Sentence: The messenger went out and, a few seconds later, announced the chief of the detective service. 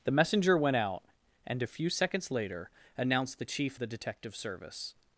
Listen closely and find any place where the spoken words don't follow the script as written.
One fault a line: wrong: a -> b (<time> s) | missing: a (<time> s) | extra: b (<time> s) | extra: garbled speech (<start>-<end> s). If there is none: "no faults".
missing: of (3.8 s)